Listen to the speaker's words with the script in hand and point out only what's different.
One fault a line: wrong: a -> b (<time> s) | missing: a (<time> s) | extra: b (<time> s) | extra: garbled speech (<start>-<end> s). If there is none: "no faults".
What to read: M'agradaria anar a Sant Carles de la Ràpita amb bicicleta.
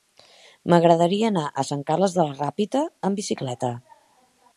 no faults